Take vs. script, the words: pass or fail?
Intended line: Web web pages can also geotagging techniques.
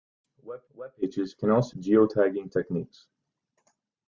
pass